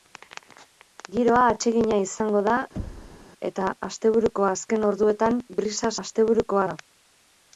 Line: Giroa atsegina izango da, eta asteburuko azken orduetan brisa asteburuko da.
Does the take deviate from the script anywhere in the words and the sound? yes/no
yes